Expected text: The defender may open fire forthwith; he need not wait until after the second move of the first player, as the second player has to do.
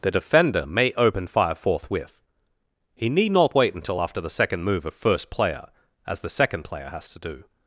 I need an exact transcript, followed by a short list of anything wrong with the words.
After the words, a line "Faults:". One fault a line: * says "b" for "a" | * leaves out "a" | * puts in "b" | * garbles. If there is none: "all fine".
The defender may open fire forthwith; he need not wait until after the second move of first player, as the second player has to do.
Faults:
* leaves out "the"